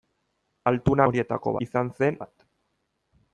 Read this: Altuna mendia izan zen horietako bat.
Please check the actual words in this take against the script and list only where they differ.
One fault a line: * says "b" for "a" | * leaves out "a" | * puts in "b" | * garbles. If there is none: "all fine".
* says "horietako" for "mendia"
* leaves out "horietako"